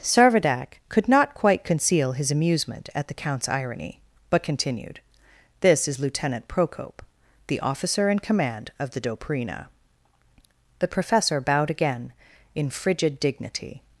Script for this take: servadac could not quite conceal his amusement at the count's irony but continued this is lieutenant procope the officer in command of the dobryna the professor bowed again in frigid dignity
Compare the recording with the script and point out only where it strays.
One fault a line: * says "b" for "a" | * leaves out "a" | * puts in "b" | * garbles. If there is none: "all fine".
all fine